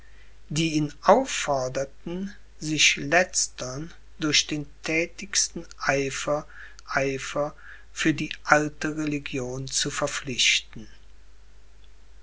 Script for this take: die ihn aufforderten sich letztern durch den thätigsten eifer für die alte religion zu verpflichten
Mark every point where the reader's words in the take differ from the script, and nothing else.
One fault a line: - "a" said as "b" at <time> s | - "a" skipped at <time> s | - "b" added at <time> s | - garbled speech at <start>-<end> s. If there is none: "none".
- "eifer" added at 6.8 s